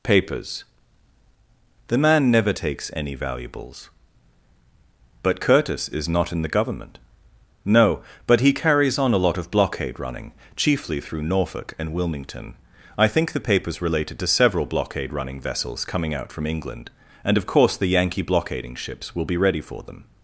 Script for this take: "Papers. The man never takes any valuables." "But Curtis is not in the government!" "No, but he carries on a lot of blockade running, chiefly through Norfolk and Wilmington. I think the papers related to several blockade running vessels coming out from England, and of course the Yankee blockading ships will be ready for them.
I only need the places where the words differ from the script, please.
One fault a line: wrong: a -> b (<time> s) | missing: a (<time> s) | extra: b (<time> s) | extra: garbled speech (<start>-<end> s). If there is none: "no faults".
no faults